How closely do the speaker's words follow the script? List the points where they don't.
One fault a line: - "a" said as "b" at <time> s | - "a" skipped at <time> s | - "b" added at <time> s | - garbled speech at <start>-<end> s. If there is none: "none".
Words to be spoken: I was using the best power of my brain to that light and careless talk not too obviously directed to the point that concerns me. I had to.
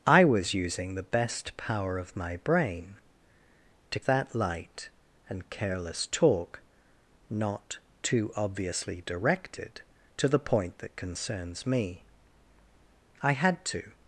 none